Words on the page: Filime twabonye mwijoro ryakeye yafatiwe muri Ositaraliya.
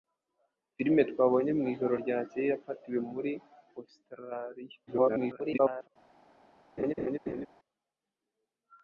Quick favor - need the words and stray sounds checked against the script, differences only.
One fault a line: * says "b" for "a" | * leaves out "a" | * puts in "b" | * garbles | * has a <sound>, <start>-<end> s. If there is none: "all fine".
* garbles
* has a laugh, 6.8-7.5 s